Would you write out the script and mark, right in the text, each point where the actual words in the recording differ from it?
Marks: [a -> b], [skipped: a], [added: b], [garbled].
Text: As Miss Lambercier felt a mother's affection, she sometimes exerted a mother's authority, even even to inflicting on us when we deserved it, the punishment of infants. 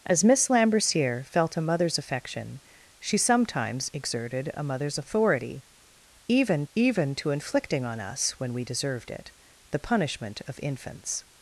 As Miss Lambercier felt a mother's affection, she sometimes exerted a mother's authority, even even to inflicting on us when we deserved it, the punishment of infants.